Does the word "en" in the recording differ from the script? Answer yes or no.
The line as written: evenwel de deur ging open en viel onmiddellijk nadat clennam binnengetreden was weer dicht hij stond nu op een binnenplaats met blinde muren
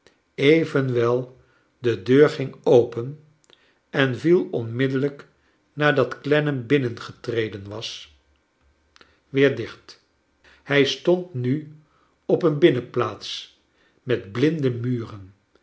no